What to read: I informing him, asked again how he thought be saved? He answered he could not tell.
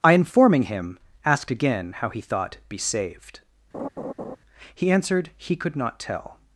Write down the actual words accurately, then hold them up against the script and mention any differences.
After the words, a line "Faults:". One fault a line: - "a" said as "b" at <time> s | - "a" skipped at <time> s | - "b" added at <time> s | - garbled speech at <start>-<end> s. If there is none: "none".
I informing him, asked again how he thought be saved? He answered he could not tell.
Faults:
none